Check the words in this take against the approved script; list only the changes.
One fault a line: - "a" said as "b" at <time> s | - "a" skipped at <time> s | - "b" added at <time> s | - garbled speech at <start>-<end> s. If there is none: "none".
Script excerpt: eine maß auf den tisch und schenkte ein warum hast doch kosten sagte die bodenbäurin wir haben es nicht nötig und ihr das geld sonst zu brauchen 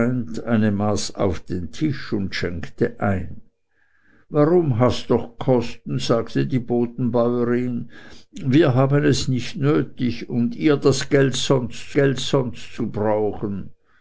- "geld sonst" added at 11.9 s